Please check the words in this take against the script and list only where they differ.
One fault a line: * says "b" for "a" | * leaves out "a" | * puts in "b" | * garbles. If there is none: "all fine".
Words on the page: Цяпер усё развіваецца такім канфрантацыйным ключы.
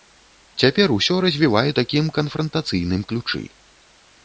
all fine